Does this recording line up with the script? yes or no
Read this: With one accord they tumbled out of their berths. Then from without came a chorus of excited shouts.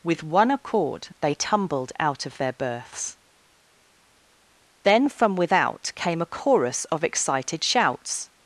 yes